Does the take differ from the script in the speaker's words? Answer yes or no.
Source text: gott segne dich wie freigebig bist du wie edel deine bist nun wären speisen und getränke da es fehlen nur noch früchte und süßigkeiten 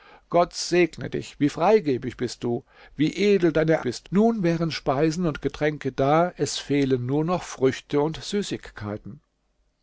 no